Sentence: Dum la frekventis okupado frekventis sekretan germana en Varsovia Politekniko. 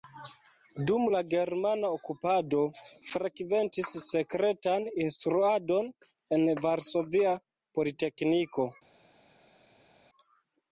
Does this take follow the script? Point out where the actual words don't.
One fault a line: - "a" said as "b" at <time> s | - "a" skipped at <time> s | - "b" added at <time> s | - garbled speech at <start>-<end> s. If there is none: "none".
- "frekventis" said as "germana" at 1.3 s
- "germana" said as "instruadon" at 5.1 s